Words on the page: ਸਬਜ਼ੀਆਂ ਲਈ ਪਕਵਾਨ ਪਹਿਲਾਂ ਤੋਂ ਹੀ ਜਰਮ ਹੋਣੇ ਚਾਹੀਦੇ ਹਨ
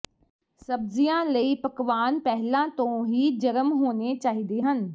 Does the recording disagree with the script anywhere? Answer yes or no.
no